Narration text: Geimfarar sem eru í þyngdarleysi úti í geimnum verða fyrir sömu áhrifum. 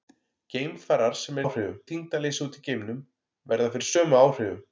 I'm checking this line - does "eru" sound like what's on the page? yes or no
no